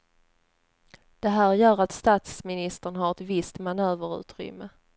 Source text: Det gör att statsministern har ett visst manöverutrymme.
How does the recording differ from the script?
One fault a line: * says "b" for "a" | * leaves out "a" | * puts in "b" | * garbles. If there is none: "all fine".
* puts in "här"